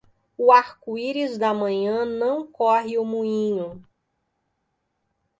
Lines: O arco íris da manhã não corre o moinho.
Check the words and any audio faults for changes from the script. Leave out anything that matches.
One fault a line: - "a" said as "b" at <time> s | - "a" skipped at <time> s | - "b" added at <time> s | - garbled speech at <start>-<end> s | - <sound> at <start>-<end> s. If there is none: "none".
none